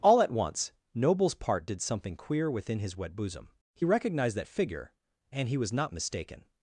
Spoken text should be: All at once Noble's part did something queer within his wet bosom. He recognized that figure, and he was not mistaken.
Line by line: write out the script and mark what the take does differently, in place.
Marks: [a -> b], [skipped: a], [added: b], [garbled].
All at once Noble's part did something queer within his wet bosom. He recognized that figure, and he was not mistaken.